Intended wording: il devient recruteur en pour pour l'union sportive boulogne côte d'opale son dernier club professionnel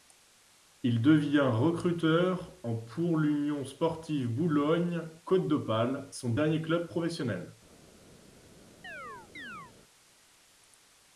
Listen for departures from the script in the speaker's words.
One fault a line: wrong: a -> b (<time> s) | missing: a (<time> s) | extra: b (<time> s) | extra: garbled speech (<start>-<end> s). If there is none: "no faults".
missing: pour (3.2 s)